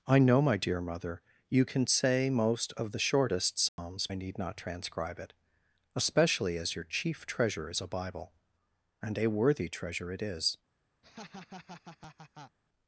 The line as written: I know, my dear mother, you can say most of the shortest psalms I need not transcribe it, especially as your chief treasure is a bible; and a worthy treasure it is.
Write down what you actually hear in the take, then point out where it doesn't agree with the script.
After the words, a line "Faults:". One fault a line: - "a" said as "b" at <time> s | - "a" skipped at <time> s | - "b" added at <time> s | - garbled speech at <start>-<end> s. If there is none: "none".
I know, my dear mother, you can say most of the shortest psalms I need not transcribe it, especially as your chief treasure is a bible; and a worthy treasure it is.
Faults:
none